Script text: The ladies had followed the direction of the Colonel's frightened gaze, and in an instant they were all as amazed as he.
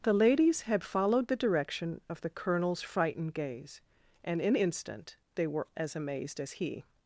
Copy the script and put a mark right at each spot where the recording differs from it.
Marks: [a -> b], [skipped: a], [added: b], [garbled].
The ladies had followed the direction of the Colonel's frightened gaze, and in [skipped: an] instant they were [skipped: all] as amazed as he.